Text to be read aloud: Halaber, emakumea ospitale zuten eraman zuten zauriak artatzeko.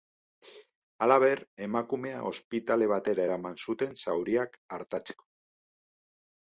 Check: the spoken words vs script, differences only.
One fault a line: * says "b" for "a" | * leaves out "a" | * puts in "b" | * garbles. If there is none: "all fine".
* says "batera" for "zuten"